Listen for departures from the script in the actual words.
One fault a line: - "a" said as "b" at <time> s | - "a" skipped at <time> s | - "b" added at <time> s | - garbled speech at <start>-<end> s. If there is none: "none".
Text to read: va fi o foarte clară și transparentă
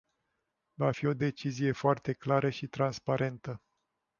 - "decizie" added at 1.1 s